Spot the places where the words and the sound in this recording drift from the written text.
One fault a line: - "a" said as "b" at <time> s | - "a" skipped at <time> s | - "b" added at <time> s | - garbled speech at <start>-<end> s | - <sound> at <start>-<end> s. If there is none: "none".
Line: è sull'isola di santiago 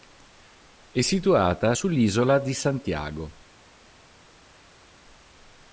- "situata" added at 1.0 s